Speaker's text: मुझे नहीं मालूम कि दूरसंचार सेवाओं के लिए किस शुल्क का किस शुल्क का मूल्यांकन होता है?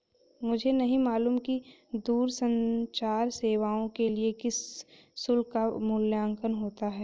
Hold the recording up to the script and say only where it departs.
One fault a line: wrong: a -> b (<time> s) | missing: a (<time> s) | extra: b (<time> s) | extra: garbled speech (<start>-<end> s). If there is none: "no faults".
missing: किस शुल्क का (5.7 s)